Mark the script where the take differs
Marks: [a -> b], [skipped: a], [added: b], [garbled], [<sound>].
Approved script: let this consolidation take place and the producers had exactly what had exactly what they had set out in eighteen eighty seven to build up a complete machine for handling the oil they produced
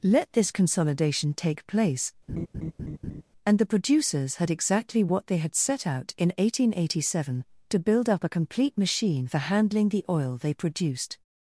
let this consolidation take place [laugh] and the producers had exactly what [skipped: had exactly what] they had set out in eighteen eighty seven to build up a complete machine for handling the oil they produced